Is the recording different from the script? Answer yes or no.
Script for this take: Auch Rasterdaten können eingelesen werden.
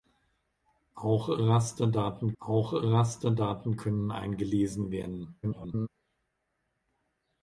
yes